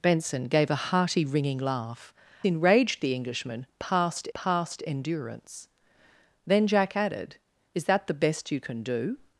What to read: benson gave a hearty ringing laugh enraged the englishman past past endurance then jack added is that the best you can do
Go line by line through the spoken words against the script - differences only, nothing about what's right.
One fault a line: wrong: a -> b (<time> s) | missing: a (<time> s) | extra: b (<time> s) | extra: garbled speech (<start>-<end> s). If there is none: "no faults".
no faults